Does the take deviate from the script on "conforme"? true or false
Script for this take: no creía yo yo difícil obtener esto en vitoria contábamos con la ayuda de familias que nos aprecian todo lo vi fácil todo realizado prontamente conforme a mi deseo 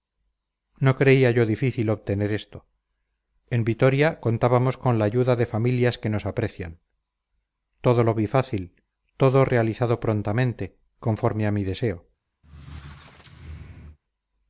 false